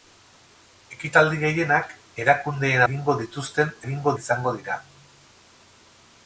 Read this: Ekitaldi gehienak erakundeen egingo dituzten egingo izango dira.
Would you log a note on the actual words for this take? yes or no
no